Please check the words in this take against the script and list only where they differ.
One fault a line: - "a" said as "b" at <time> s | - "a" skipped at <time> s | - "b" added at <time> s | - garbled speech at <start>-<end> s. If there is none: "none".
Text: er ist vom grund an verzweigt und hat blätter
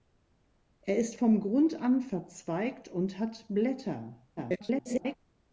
- garbled speech at 4.4-5.2 s